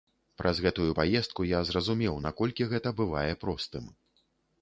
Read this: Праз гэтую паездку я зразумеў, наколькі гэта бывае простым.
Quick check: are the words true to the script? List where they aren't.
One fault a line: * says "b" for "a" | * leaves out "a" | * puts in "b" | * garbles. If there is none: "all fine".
all fine